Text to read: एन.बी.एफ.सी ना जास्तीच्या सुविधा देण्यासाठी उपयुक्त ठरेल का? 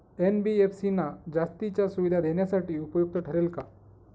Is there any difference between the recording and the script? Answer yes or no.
no